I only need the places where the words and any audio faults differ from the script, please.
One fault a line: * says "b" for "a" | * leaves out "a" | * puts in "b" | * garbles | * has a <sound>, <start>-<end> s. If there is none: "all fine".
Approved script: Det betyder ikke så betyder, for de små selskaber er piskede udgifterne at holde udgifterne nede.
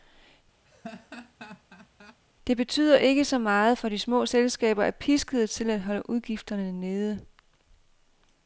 * has a laugh, 0.6-2.2 s
* says "meget" for "betyder"
* says "til" for "udgifterne"